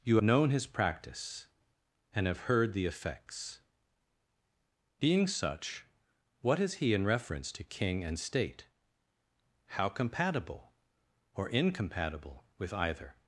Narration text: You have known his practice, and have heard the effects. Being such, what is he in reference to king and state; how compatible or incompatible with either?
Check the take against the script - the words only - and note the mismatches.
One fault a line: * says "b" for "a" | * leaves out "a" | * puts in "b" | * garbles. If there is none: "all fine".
* leaves out "have"